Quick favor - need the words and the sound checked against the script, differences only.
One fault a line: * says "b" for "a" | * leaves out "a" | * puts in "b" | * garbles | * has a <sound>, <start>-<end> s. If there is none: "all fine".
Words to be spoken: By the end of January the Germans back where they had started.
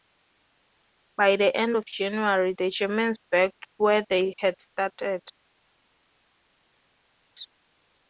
all fine